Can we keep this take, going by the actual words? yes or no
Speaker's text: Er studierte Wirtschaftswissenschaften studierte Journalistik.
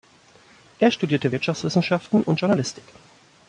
no